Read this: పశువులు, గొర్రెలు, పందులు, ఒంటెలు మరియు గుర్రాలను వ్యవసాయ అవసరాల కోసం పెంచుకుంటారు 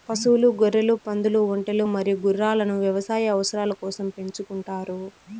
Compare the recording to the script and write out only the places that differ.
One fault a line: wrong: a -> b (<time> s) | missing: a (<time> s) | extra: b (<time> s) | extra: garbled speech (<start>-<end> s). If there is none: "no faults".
no faults